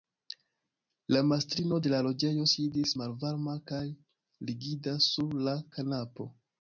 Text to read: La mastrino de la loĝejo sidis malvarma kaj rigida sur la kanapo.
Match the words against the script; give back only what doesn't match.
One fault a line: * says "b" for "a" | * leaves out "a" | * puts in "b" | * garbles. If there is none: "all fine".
all fine